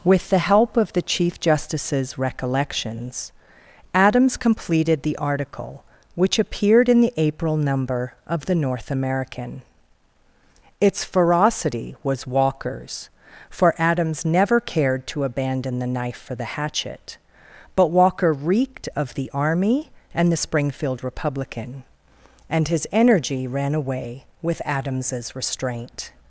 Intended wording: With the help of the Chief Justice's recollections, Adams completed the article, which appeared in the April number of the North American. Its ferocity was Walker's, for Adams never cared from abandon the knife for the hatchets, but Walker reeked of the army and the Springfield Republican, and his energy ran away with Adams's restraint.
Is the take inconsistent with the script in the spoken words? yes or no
yes